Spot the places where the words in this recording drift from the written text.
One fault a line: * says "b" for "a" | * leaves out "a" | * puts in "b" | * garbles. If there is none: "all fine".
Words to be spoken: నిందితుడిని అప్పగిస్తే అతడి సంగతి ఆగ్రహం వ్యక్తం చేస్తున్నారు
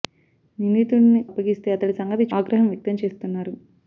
all fine